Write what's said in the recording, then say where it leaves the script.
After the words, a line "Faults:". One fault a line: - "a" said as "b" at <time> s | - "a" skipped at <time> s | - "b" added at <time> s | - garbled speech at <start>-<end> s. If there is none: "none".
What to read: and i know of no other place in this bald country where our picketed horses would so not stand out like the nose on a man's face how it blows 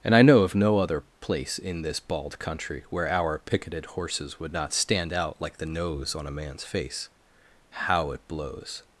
and i know of no other place in this bald country where our picketed horses would not stand out like the nose on a man's face how it blows
Faults:
- "so" skipped at 4.5 s